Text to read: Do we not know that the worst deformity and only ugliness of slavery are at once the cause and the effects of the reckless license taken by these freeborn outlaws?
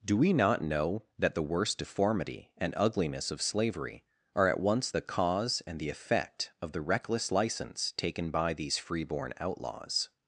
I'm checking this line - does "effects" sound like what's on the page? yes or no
no